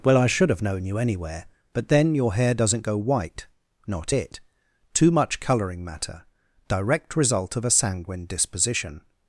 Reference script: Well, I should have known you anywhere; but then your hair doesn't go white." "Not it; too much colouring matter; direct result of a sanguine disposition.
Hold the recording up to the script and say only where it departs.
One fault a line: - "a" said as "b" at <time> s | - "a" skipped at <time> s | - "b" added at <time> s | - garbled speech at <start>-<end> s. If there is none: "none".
none